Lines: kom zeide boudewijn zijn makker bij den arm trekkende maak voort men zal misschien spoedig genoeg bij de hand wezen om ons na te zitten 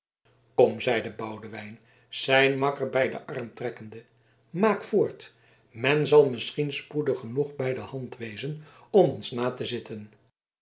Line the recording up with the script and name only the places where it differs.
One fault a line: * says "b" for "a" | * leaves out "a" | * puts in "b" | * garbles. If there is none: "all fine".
all fine